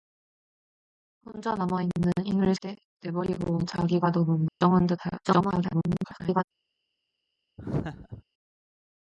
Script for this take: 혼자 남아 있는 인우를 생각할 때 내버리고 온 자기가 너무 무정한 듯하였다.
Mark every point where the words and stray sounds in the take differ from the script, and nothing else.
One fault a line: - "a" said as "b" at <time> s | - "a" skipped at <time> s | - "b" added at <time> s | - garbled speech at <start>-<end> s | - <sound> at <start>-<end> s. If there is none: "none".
- "생각할" skipped at 2.5 s
- dropout at 4.5-4.6 s
- garbled speech at 5.2-6.4 s
- laugh at 7.6-8.2 s